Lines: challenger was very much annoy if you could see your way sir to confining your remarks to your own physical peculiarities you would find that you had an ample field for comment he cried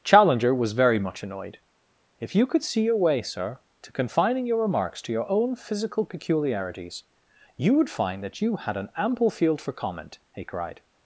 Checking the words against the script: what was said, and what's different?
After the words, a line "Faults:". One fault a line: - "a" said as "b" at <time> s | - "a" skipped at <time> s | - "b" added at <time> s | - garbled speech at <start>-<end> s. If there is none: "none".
challenger was very much annoyed if you could see your way sir to confining your remarks to your own physical peculiarities you would find that you had an ample field for comment he cried
Faults:
- "annoy" said as "annoyed" at 1.2 s